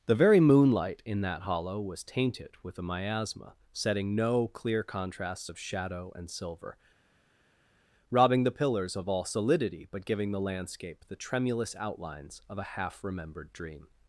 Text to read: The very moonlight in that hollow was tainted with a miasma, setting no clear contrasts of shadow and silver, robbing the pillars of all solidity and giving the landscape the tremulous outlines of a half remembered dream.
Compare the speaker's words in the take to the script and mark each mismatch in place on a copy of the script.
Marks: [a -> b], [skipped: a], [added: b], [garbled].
The very moonlight in that hollow was tainted with a miasma, setting no clear contrasts of shadow and silver, robbing the pillars of all solidity [and -> but] giving the landscape the tremulous outlines of a half remembered dream.